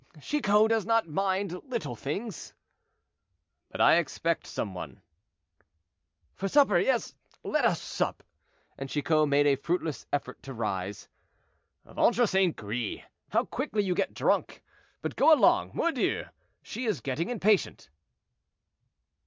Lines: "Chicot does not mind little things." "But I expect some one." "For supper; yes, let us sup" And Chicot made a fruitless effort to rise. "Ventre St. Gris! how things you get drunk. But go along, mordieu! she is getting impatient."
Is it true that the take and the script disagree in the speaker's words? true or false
true